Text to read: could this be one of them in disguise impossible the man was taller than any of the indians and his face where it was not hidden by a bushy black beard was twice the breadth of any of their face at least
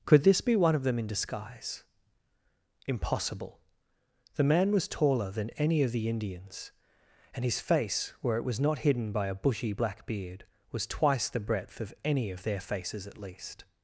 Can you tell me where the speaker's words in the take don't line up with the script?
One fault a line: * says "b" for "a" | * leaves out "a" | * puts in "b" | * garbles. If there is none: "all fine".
* says "faces" for "face"